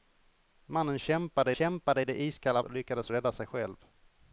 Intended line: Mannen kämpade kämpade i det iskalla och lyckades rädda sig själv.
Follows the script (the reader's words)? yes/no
yes